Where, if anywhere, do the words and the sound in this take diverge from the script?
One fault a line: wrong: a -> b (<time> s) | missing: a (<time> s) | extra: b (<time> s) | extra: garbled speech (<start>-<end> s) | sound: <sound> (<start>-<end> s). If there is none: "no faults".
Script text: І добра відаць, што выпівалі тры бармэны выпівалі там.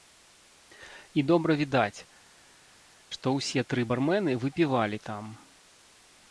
wrong: выпівалі -> ўсе (3.4 s)